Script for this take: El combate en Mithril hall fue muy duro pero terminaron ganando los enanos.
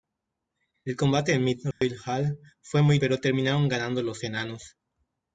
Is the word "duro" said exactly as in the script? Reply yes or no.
no